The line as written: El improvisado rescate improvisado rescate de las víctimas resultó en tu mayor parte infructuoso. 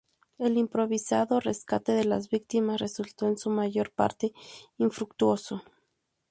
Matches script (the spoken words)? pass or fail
fail